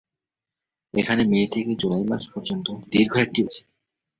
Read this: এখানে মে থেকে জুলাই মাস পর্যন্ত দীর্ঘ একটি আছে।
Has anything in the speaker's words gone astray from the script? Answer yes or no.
no